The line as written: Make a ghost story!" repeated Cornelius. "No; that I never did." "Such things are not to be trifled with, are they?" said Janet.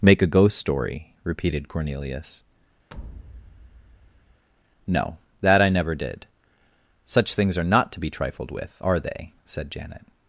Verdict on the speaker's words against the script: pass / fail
pass